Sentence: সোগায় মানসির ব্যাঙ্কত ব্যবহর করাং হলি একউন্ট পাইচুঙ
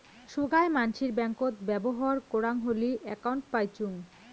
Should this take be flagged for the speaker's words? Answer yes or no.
no